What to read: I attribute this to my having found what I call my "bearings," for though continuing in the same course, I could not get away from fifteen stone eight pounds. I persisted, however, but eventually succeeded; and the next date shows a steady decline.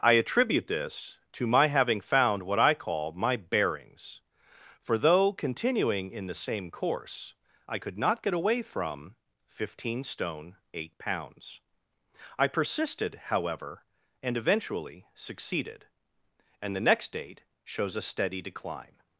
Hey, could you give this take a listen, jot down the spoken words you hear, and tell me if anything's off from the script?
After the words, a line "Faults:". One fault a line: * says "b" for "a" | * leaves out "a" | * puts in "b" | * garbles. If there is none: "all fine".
I attribute this to my having found what I call my "bearings," for though continuing in the same course, I could not get away from fifteen stone eight pounds. I persisted, however, and eventually succeeded; and the next date shows a steady decline.
Faults:
* says "and" for "but"